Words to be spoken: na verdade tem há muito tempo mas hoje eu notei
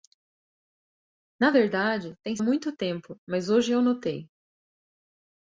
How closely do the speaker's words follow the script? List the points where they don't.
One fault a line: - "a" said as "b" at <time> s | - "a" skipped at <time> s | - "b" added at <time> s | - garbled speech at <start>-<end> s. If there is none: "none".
none